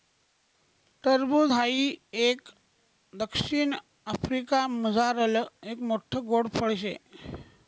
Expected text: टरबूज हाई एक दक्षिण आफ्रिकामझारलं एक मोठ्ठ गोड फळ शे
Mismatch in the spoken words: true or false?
false